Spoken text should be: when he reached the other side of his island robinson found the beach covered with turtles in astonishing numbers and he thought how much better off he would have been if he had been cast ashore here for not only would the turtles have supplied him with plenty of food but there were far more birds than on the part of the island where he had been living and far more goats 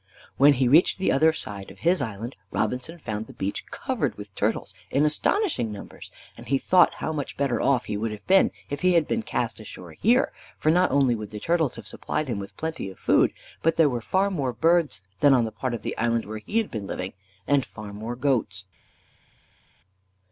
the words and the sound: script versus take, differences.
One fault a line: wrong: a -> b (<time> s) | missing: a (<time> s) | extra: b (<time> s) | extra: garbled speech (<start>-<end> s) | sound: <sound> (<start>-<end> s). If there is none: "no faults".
no faults